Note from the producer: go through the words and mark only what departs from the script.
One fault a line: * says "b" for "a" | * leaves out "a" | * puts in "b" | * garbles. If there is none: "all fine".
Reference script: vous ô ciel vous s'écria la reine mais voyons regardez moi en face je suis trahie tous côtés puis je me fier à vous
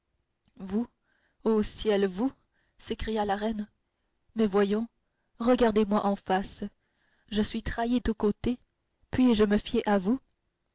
all fine